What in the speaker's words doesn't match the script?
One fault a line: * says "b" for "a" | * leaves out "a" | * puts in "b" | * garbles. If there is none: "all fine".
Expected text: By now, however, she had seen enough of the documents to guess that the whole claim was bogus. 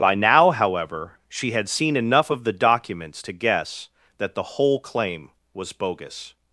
all fine